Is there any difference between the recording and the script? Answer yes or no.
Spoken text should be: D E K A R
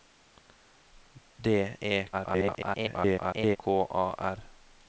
yes